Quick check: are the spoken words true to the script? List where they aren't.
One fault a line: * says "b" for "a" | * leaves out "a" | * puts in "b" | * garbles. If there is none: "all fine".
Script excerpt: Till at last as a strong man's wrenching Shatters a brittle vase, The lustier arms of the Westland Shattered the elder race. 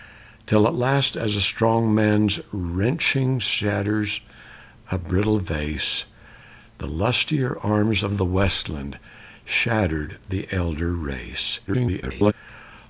* garbles